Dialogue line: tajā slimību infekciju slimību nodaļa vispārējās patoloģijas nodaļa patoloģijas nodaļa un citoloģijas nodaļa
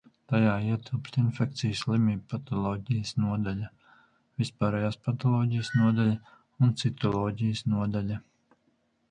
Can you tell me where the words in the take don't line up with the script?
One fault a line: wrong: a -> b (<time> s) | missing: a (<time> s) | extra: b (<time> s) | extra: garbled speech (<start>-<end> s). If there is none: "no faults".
wrong: slimību -> ietilpst (0.7 s)
extra: patoloģijas (2.3 s)
missing: patoloģijas nodaļa (6.2 s)